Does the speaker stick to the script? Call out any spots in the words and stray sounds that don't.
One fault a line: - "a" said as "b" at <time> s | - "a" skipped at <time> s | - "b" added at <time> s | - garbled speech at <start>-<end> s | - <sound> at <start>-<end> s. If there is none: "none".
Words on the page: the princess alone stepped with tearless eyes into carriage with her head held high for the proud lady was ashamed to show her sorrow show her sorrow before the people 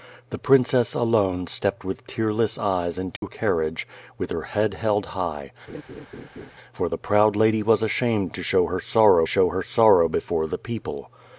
- dropout at 3.2-3.2 s
- laugh at 5.7-6.5 s